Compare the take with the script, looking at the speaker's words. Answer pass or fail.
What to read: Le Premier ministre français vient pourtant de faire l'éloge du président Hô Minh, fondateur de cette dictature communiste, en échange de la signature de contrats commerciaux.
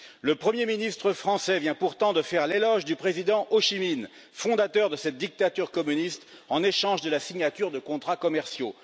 fail